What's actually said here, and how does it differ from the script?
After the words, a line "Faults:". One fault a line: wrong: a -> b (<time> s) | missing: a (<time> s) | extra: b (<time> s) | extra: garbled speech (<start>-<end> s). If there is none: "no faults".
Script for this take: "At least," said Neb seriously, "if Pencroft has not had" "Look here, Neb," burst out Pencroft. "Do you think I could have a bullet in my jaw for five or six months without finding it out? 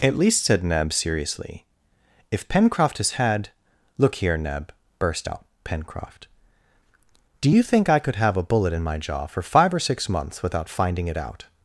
"At least," said Neb seriously, "if Pencroft has had" "Look here, Neb," burst out Pencroft. "Do you think I could have a bullet in my jaw for five or six months without finding it out?
Faults:
missing: not (3.1 s)